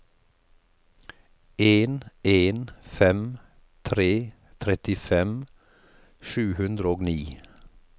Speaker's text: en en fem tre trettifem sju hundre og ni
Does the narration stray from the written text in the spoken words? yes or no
no